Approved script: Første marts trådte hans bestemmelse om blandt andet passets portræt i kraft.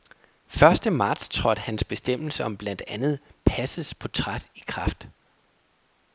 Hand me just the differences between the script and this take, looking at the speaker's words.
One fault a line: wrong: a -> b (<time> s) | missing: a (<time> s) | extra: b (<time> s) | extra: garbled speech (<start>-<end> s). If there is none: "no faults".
no faults